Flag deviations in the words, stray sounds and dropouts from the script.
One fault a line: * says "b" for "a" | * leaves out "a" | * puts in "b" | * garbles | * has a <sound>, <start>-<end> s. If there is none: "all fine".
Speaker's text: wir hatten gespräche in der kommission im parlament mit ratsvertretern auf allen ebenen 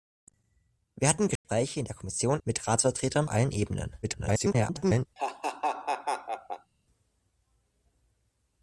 * has a dropout, 1.4-1.4 s
* leaves out "im parlament"
* leaves out "auf"
* garbles
* has a laugh, 5.2-6.7 s